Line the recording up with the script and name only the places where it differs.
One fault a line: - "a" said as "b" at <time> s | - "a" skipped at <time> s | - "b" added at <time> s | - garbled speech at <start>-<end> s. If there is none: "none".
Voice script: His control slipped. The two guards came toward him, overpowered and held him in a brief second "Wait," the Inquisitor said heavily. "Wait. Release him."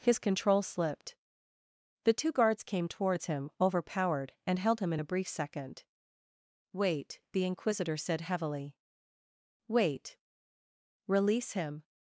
- "toward" said as "towards" at 2.9 s